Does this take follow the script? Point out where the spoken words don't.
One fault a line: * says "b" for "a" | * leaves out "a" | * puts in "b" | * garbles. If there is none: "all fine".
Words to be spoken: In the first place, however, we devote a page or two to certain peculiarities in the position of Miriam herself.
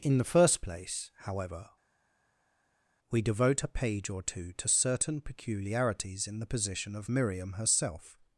all fine